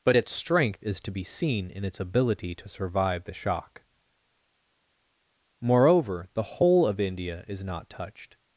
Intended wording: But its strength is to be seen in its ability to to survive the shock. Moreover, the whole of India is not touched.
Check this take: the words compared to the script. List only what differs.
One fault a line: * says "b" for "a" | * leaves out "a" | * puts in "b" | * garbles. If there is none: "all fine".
* leaves out "to"